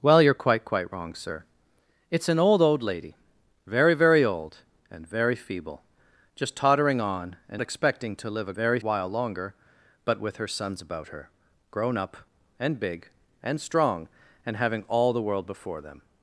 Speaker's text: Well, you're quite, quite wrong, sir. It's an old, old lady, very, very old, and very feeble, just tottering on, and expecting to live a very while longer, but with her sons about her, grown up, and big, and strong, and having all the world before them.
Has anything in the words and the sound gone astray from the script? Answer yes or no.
no